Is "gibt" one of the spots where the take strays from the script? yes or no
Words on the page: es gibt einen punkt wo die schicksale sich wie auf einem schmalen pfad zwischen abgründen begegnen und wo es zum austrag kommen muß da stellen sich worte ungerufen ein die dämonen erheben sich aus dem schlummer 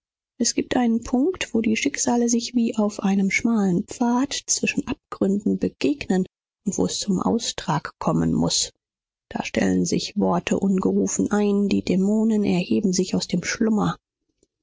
no